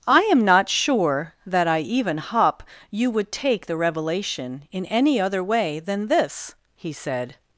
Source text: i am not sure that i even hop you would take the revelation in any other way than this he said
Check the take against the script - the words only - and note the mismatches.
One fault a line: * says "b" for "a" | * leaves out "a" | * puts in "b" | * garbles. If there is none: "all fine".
all fine